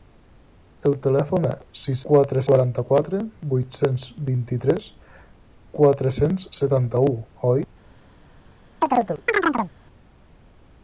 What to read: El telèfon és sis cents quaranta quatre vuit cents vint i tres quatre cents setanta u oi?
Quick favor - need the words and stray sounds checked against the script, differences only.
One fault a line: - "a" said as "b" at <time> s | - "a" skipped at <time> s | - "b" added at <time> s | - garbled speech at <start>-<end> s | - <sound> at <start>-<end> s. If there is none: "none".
- "cents" said as "quatre" at 2.1 s
- chirp at 8.8-9.7 s